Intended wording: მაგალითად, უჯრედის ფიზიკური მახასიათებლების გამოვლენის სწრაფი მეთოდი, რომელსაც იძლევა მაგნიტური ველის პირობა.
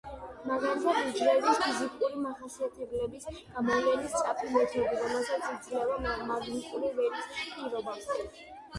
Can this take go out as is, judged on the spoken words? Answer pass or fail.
pass